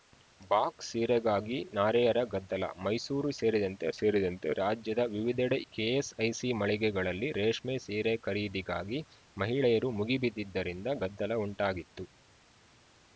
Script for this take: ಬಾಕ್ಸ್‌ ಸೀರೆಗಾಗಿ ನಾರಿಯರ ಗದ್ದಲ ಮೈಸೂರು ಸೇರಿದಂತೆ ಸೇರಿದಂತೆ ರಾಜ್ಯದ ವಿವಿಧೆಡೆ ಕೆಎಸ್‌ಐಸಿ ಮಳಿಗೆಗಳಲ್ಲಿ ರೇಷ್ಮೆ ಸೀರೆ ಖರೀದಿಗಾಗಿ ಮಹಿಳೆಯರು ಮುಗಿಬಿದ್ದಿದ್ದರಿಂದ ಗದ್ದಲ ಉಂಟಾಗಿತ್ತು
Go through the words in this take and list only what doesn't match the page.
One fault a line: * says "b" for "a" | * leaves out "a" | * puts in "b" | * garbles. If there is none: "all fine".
all fine